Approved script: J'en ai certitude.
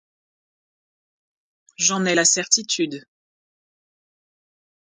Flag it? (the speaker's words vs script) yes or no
yes